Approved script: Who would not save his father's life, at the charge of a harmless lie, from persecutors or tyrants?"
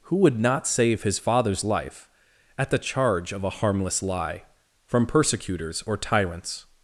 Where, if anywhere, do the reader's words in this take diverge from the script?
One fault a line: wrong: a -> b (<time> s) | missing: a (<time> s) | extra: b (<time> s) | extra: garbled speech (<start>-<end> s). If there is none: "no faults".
no faults